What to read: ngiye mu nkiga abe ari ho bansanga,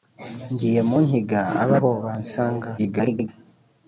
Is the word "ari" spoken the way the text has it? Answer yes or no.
no